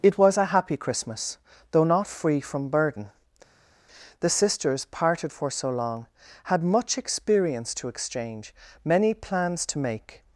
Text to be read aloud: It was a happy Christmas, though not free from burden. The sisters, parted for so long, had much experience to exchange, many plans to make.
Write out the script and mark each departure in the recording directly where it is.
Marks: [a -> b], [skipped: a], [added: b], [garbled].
It was a happy Christmas, though not free from burden. The sisters, parted for so long, had much experience to exchange, many plans to make.